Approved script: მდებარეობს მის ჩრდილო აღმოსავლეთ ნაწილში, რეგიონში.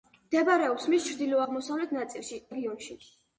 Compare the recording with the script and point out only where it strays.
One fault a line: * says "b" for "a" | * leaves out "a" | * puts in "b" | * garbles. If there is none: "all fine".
all fine